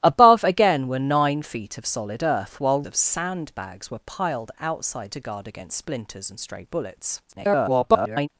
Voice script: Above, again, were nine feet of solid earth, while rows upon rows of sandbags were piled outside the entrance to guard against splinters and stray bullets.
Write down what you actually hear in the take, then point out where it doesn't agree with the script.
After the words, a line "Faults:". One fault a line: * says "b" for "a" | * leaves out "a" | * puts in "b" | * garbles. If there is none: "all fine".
Above, again, were nine feet of solid earth, while of sandbags were piled outside to guard against splinters and stray bullets. [garbled]
Faults:
* leaves out "rows upon rows"
* leaves out "the entrance"
* garbles